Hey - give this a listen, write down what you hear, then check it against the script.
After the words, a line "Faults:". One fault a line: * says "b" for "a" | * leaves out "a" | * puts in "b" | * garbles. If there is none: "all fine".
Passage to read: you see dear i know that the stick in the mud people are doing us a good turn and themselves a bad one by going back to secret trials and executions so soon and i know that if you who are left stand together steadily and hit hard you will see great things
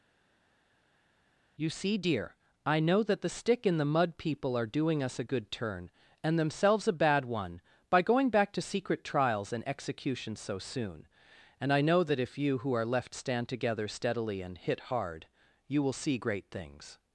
you see dear i know that the stick in the mud people are doing us a good turn and themselves a bad one by going back to secret trials and executions so soon and i know that if you who are left stand together steadily and hit hard you will see great things
Faults:
all fine